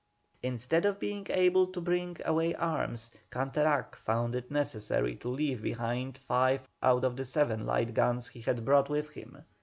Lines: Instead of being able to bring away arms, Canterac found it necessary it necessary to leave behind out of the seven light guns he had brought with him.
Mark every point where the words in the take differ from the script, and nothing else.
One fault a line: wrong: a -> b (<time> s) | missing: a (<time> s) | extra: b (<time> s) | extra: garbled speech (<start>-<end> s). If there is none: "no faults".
missing: it necessary (5.2 s)
extra: five (6.2 s)